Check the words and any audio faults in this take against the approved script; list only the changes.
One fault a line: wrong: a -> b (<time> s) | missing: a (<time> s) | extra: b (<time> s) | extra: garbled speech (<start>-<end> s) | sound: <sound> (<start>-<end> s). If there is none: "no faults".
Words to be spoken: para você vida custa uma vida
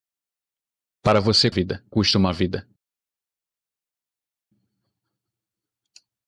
no faults